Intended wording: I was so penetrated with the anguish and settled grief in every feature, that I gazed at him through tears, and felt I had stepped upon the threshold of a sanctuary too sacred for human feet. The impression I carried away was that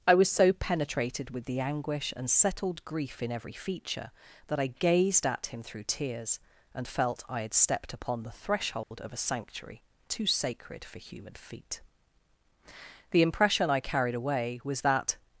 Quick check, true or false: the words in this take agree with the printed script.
true